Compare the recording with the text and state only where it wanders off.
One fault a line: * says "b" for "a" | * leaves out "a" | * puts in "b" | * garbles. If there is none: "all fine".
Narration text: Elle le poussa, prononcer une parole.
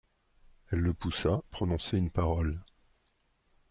all fine